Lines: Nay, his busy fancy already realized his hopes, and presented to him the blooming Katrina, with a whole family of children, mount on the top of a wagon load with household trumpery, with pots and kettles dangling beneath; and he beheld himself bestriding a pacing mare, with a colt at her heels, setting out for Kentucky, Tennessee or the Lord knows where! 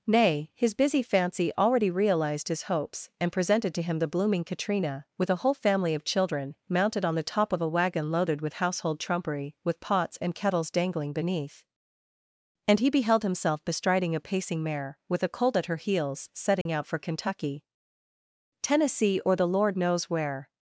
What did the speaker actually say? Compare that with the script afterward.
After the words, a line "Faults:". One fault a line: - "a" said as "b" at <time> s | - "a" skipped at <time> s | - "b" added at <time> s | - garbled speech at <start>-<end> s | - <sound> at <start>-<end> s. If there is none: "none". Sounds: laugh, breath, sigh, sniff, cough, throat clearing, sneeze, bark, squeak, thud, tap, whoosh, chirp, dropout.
Nay, his busy fancy already realized his hopes, and presented to him the blooming Katrina, with a whole family of children, mounted on the top of a wagon loaded with household trumpery, with pots and kettles dangling beneath; and he beheld himself bestriding a pacing mare, with a colt at her heels, setting out for Kentucky, Tennessee or the Lord knows where!
Faults:
- "mount" said as "mounted" at 6.7 s
- "load" said as "loaded" at 8.1 s
- dropout at 16.6-16.7 s